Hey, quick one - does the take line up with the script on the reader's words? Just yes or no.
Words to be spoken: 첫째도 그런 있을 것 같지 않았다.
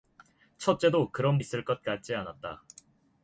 yes